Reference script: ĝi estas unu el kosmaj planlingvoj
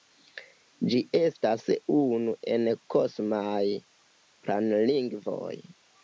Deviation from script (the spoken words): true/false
false